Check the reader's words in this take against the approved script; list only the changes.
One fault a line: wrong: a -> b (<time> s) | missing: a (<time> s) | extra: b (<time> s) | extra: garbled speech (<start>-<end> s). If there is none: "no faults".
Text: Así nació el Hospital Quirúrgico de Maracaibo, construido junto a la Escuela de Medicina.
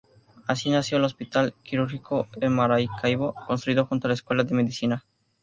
no faults